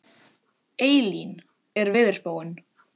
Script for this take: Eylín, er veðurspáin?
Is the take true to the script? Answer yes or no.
yes